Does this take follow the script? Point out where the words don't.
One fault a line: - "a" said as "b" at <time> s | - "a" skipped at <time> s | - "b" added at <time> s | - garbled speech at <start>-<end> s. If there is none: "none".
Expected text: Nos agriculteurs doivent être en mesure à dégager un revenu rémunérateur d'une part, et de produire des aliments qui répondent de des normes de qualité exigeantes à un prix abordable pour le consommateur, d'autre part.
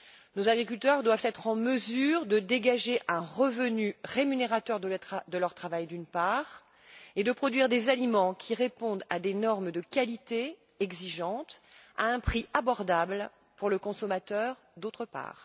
- "à" said as "de" at 2.2 s
- "de leur travail" added at 4.8 s
- "de" said as "à" at 9.1 s